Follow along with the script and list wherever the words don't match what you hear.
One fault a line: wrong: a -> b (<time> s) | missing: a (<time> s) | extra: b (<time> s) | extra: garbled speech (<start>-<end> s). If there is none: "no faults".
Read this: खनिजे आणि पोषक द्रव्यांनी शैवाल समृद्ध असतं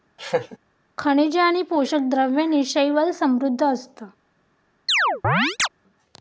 no faults